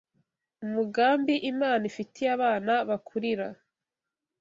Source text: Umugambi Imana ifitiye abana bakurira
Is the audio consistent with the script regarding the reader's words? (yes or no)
yes